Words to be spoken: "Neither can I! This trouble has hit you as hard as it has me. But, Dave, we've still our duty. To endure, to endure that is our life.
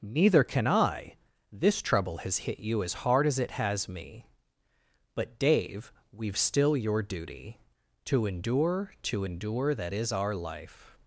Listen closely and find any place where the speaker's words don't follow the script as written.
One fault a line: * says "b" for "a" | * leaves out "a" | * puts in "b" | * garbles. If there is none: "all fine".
* says "your" for "our"